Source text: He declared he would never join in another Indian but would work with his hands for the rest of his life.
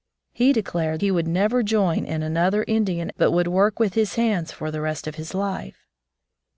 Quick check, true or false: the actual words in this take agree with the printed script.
true